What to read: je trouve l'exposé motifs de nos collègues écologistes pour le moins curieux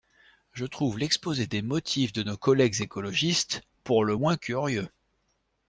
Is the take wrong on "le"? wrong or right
right